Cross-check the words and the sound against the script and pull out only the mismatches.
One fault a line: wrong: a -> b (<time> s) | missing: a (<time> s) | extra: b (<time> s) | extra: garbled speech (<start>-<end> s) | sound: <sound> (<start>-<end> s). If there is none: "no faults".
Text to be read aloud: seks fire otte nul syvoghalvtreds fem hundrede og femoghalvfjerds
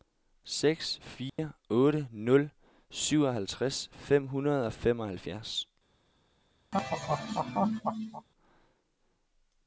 sound: dropout (1.3-1.4 s)
sound: laugh (6.7-8.3 s)